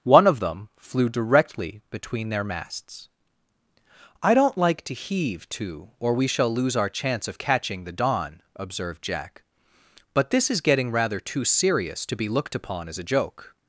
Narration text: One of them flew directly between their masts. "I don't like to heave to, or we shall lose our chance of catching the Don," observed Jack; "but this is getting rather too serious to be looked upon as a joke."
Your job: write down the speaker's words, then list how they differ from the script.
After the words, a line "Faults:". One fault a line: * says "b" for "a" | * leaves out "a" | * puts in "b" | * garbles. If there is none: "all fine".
One of them flew directly between their masts. "I don't like to heave to, or we shall lose our chance of catching the Don," observed Jack; "but this is getting rather too serious to be looked upon as a joke."
Faults:
all fine